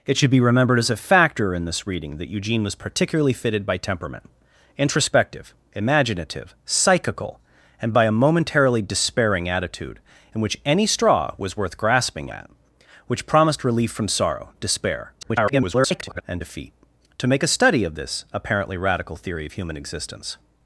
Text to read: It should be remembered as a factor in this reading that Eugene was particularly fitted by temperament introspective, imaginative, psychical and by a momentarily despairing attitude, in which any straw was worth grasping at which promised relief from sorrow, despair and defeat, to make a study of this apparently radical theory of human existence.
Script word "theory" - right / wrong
right